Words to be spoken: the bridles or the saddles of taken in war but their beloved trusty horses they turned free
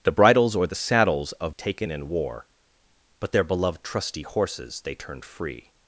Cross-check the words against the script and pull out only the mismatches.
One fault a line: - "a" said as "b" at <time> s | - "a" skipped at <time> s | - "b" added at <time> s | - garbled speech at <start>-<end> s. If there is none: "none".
none